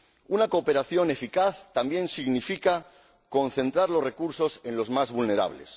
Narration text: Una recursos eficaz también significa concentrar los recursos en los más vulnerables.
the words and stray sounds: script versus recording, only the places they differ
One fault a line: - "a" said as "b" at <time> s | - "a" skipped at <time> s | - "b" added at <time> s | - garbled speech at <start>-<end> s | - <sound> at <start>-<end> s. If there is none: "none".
- "recursos" said as "cooperación" at 0.5 s